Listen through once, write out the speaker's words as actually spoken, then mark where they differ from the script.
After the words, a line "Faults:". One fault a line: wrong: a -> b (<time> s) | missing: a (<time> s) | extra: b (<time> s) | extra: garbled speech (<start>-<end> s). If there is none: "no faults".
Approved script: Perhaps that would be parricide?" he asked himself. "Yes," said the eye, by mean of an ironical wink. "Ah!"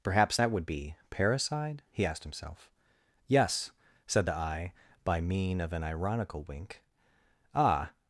Perhaps that would be parricide?" he asked himself. "Yes," said the eye, by mean of an ironical wink. "Ah!"
Faults:
no faults